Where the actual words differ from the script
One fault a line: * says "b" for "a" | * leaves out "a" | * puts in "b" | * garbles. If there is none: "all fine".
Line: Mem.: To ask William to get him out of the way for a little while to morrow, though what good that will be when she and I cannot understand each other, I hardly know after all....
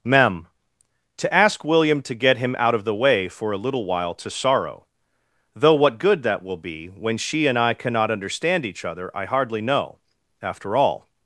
* says "sorrow" for "morrow"